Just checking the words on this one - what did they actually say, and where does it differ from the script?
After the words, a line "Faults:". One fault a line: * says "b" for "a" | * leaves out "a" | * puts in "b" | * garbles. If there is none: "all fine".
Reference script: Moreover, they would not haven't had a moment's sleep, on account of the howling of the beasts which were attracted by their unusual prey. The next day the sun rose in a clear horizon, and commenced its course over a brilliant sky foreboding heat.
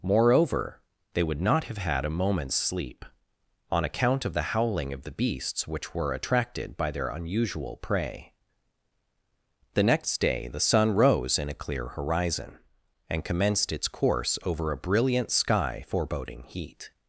Moreover, they would not have had a moment's sleep, on account of the howling of the beasts which were attracted by their unusual prey. The next day the sun rose in a clear horizon, and commenced its course over a brilliant sky foreboding heat.
Faults:
* says "have" for "haven't"